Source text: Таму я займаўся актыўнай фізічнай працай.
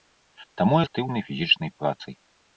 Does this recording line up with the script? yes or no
no